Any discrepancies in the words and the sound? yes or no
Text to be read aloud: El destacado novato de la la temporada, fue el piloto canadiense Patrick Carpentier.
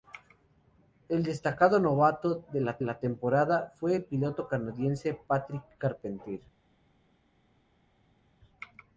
no